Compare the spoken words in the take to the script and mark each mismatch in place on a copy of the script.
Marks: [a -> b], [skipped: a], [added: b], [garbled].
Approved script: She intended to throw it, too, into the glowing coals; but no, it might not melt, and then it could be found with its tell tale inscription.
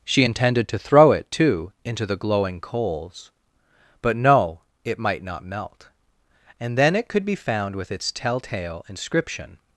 She intended to throw it, too, into the glowing coals; but no, it might not melt, and then it could be found with its tell tale inscription.